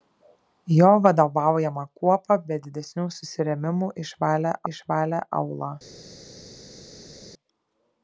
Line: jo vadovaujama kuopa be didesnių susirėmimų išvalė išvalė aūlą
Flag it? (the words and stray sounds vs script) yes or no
no